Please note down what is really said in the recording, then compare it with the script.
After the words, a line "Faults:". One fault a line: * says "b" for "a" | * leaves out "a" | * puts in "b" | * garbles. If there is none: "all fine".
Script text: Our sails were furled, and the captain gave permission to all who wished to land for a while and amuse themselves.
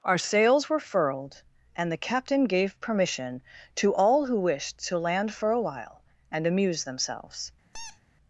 Our sails were furled, and the captain gave permission to all who wished to land for a while and amuse themselves.
Faults:
all fine